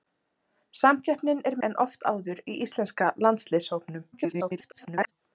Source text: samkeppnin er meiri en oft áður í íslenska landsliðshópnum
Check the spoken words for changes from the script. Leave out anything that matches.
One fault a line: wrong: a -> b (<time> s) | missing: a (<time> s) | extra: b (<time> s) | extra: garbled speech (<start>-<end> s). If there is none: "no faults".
missing: meiri (1.6 s)
extra: garbled speech (4.1-5.1 s)